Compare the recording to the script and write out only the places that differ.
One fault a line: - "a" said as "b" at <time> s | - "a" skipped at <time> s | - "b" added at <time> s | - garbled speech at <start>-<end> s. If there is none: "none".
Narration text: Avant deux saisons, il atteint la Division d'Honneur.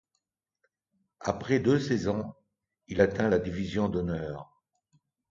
- "Avant" said as "Après" at 1.2 s